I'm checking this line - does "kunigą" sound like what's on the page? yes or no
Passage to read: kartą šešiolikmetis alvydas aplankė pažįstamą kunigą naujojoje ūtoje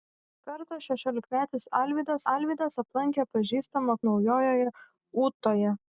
no